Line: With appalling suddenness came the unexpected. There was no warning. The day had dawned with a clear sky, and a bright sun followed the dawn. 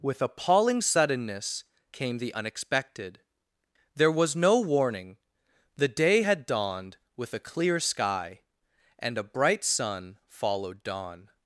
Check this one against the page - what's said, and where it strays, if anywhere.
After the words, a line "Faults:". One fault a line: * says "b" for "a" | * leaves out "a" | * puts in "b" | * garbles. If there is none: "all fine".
With appalling suddenness came the unexpected. There was no warning. The day had dawned with a clear sky, and a bright sun followed dawn.
Faults:
* leaves out "the"